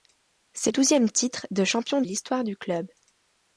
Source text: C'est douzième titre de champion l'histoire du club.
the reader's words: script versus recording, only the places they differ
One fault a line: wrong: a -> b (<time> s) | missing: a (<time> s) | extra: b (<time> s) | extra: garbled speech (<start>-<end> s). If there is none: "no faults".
no faults